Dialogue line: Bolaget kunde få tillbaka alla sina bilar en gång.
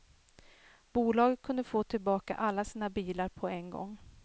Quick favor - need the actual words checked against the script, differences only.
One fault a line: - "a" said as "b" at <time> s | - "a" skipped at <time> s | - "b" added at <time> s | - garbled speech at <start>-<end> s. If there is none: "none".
- "på" added at 3.3 s